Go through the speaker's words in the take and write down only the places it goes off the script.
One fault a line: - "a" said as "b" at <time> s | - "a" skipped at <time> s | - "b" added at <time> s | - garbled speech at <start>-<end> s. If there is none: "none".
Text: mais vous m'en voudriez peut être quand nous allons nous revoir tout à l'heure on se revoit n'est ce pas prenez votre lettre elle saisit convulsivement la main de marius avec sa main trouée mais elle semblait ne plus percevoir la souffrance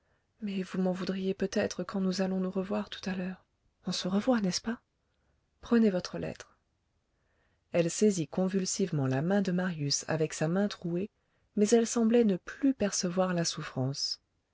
none